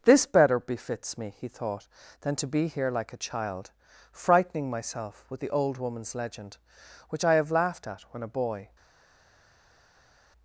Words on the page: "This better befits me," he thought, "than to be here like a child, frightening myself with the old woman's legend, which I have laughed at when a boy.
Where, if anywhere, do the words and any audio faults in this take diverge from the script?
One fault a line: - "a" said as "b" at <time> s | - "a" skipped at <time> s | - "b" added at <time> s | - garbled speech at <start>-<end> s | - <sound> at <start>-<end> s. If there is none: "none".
none